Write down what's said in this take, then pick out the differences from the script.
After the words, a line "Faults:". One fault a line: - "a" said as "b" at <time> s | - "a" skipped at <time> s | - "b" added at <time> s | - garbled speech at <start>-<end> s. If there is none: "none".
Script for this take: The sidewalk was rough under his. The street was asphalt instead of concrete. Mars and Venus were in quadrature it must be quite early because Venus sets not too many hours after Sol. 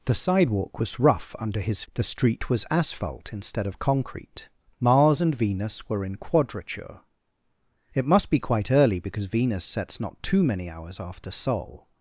The sidewalk was rough under his. The street was asphalt instead of concrete. Mars and Venus were in quadrature it must be quite early because Venus sets not too many hours after Sol.
Faults:
none